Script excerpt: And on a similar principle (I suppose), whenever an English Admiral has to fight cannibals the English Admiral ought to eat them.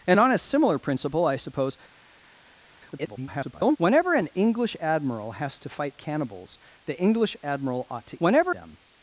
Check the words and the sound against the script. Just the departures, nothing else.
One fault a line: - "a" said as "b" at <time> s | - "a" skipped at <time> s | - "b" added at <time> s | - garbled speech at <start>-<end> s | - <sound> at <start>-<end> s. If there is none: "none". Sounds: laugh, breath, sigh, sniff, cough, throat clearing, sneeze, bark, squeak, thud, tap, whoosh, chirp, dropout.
- garbled speech at 2.9-3.8 s
- "eat" said as "whenever" at 8.2 s